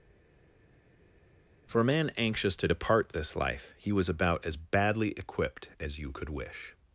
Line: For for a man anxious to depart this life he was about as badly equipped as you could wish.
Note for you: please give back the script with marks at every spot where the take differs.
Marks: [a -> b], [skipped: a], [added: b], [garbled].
For [skipped: for] a man anxious to depart this life he was about as badly equipped as you could wish.